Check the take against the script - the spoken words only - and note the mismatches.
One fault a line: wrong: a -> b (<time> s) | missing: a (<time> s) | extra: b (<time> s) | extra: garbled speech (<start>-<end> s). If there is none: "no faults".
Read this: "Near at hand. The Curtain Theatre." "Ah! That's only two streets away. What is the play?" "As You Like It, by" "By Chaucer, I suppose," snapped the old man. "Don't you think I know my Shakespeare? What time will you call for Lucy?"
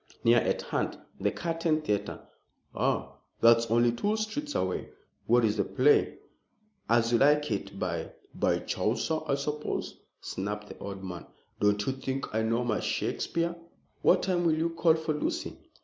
no faults